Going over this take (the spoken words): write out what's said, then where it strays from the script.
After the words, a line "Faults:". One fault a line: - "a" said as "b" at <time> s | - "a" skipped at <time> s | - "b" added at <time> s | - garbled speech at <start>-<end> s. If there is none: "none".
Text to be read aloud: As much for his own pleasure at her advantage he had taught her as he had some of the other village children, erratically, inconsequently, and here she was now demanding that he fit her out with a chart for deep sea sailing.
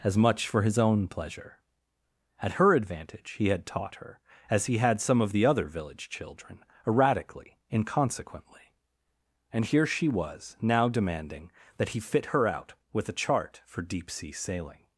As much for his own pleasure at her advantage he had taught her as he had some of the other village children, erratically, inconsequently, and here she was now demanding that he fit her out with a chart for deep sea sailing.
Faults:
none